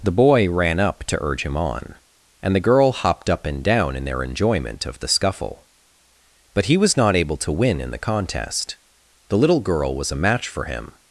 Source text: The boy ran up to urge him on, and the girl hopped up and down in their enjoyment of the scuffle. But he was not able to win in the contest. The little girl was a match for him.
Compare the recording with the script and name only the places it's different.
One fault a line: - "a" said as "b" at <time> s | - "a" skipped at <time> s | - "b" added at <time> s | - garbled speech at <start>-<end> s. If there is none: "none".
none